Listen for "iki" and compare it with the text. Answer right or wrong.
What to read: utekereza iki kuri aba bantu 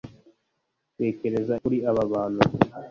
wrong